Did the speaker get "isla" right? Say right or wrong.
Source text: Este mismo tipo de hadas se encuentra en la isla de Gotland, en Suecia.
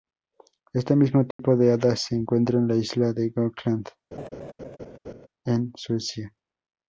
right